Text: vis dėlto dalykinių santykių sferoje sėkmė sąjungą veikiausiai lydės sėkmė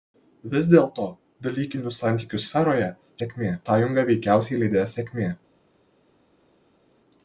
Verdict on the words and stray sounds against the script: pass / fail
pass